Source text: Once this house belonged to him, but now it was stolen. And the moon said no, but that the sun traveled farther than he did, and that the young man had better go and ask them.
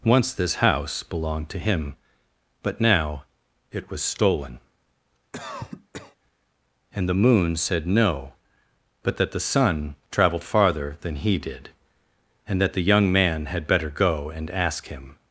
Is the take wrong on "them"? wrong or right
wrong